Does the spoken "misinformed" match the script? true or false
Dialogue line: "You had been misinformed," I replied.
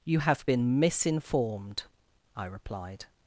true